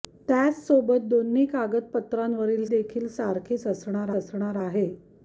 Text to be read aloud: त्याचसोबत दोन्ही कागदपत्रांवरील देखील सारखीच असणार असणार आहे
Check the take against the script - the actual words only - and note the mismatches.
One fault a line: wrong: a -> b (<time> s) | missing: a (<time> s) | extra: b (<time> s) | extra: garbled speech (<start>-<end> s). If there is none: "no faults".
no faults